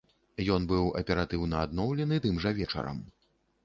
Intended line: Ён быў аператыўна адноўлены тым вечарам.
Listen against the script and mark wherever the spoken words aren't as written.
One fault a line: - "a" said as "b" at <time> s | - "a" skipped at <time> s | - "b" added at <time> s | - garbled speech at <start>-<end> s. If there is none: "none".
- "жа" added at 2.5 s